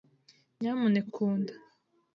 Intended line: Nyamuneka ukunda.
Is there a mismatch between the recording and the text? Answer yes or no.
no